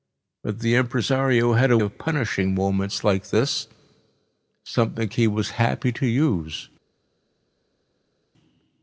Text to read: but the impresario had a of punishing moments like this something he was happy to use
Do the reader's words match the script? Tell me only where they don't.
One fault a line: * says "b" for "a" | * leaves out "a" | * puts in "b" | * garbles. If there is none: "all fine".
all fine